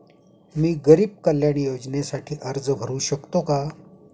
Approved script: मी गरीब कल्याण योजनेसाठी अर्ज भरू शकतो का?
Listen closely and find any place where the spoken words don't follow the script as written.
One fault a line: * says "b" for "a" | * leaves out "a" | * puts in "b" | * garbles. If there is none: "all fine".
all fine